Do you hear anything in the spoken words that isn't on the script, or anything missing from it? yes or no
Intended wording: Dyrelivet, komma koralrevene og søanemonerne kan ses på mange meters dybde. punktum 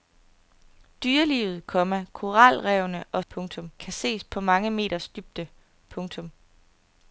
yes